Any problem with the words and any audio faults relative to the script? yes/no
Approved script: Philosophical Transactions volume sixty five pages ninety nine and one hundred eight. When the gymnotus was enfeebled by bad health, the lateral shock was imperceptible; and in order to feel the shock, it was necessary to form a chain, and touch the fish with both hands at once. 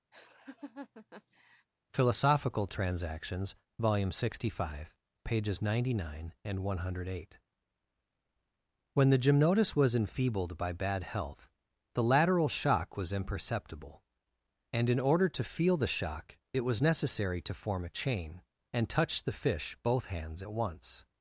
yes